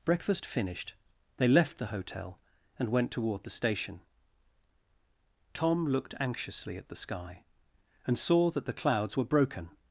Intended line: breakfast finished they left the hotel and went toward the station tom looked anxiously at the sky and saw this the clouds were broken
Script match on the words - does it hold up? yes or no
no